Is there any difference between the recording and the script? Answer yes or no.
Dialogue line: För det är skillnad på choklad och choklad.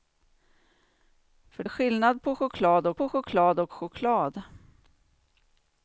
yes